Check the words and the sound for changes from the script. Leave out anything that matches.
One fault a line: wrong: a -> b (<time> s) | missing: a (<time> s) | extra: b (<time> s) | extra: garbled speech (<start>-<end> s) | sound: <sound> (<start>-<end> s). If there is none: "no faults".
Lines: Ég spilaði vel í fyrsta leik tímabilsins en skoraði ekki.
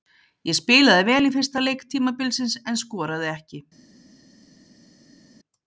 no faults